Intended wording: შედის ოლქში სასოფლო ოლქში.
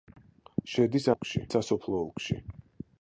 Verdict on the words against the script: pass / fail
pass